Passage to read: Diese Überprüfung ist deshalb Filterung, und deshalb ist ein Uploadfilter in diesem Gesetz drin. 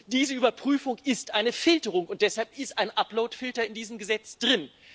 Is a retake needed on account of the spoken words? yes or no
yes